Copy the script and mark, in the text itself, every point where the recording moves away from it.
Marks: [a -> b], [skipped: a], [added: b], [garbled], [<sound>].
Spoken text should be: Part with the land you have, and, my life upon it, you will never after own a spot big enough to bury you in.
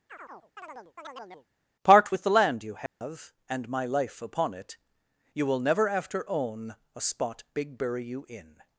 [chirp] Part with the land you have, [dropout] and, my life upon it, you will never after own a spot big [skipped: enough to] bury you in.